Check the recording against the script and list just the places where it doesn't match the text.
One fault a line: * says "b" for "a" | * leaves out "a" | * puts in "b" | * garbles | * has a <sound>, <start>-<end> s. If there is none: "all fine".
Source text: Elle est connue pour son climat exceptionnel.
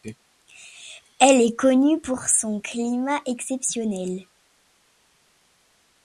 all fine